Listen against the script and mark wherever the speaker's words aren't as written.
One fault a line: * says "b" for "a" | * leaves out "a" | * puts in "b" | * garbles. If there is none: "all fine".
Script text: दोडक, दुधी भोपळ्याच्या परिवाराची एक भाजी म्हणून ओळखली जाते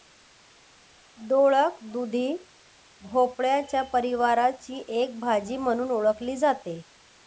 all fine